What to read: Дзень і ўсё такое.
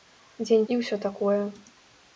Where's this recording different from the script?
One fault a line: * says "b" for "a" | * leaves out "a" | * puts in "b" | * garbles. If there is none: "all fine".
all fine